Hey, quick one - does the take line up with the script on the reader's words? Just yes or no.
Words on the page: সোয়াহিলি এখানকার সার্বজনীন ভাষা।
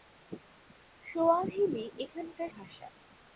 no